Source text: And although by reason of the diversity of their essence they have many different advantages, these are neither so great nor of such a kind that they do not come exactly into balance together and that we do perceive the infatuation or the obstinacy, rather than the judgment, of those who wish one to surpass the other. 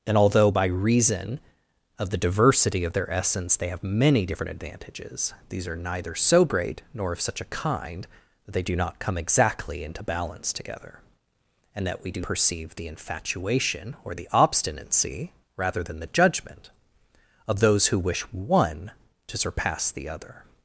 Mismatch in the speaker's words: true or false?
false